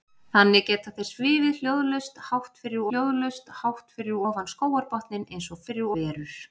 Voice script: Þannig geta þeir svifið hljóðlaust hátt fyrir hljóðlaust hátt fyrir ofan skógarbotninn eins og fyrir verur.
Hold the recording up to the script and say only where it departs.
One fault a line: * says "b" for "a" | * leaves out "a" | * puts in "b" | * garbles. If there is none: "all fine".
all fine